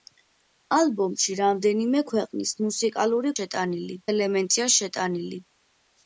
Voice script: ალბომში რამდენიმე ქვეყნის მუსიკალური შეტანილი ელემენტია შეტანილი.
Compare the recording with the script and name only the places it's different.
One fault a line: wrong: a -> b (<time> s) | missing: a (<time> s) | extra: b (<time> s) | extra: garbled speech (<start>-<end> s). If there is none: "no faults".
no faults